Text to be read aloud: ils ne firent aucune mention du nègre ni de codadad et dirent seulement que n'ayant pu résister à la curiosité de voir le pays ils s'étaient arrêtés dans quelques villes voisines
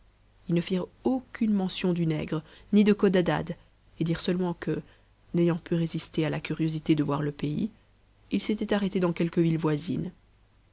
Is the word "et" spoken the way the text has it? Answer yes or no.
yes